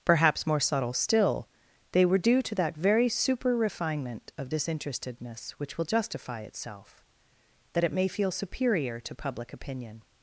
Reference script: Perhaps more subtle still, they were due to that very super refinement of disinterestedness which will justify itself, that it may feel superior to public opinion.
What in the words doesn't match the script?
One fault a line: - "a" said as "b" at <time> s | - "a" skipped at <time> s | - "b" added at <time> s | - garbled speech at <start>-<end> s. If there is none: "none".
none